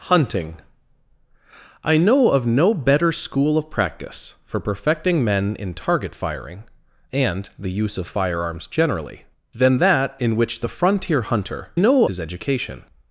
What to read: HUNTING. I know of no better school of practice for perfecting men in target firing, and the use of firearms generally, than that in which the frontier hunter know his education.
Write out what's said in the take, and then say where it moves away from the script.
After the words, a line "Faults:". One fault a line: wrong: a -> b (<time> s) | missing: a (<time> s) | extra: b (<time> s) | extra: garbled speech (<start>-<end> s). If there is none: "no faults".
HUNTING. I know of no better school of practice for perfecting men in target firing, and the use of firearms generally, than that in which the frontier hunter know his education.
Faults:
no faults